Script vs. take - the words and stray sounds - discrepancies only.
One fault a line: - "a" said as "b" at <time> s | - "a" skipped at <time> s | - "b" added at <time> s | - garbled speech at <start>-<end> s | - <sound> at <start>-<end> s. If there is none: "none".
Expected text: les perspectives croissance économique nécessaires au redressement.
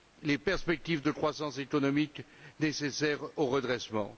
- "de" added at 1.0 s